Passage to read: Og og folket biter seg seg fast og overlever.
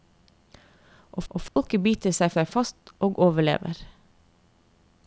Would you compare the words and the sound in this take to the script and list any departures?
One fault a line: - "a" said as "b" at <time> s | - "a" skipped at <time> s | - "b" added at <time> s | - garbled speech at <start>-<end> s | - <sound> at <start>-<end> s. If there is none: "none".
- dropout at 1.5-1.6 s